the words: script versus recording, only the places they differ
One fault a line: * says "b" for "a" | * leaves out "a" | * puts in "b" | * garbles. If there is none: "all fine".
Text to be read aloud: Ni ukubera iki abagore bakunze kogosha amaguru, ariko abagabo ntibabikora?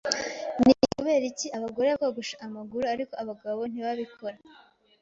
* leaves out "bakunze"